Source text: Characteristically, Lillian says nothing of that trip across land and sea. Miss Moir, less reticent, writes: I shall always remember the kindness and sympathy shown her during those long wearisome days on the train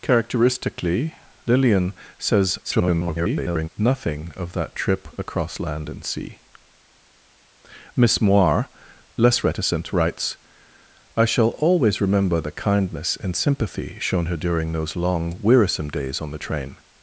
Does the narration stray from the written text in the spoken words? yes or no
yes